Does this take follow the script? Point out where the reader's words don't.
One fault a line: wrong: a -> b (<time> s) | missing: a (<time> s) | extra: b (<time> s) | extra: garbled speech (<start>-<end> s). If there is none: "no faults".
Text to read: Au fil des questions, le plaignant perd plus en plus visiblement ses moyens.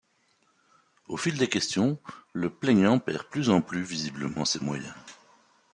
no faults